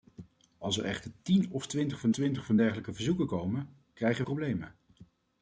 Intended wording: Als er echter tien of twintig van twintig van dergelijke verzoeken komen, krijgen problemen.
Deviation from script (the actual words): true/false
false